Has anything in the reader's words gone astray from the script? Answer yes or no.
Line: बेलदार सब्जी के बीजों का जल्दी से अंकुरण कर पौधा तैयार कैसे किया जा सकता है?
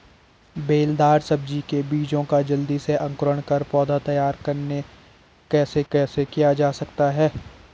yes